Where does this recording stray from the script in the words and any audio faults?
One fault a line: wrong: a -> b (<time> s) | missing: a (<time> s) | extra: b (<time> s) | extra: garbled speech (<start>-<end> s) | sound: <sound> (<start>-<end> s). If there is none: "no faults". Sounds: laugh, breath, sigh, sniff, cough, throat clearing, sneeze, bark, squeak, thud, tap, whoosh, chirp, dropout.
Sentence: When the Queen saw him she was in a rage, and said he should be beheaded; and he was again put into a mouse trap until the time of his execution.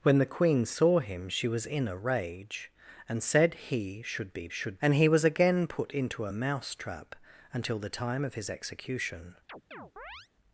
wrong: beheaded -> should (4.5 s)
sound: chirp (9.5-10.3 s)